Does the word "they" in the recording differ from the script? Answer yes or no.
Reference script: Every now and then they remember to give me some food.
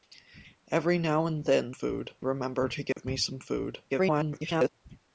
yes